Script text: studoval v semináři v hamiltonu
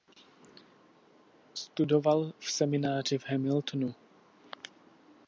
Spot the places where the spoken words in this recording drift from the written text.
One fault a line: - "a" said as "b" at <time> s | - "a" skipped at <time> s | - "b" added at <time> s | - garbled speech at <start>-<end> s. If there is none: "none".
none